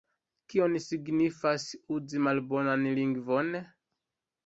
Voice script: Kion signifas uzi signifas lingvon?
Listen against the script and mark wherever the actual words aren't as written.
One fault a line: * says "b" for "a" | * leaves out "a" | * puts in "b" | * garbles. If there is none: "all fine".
* says "malbonan" for "signifas"